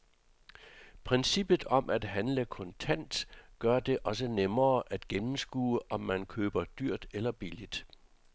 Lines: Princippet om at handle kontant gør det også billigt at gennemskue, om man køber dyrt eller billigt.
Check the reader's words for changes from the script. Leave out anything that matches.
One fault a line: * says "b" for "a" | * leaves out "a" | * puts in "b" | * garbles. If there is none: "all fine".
* says "nemmere" for "billigt"